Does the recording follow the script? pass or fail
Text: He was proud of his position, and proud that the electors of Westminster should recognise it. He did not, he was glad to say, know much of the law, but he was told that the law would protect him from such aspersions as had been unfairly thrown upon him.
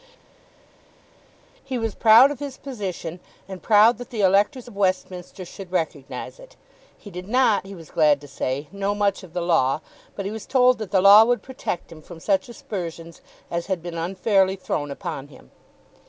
pass